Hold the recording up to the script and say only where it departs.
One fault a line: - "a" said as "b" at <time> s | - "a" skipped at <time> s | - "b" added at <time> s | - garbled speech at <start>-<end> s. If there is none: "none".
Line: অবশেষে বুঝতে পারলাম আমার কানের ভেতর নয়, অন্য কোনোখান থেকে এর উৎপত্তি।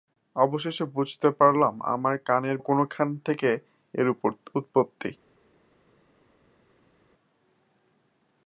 - "ভেতর নয় অন্য" skipped at 2.6 s